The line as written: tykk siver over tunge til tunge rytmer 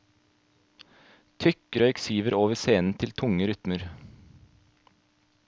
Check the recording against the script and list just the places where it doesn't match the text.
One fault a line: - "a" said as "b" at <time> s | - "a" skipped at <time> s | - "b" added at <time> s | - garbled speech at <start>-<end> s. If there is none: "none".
- "røyk" added at 1.8 s
- "tunge" said as "scenen" at 2.6 s